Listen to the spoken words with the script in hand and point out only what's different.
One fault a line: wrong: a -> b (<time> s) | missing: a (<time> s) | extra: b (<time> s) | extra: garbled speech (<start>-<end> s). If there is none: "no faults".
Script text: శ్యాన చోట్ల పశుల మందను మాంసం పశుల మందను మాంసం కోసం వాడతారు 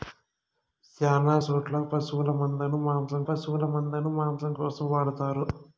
no faults